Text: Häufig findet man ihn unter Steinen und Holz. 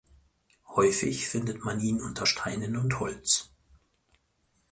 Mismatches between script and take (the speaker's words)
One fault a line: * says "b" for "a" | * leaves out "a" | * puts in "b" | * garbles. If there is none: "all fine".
all fine